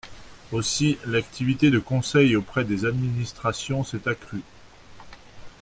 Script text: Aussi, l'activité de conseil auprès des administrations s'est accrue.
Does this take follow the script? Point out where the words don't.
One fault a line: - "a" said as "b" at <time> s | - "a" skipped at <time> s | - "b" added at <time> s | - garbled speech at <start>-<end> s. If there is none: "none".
none